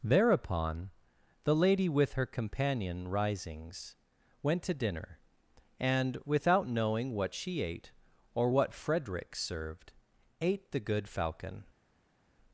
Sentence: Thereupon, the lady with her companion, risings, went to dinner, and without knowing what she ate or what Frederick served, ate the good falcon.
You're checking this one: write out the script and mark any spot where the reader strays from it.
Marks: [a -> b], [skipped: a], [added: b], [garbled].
Thereupon, the lady with her companion, risings, went to dinner, and without knowing what she ate or what Frederick served, ate the good falcon.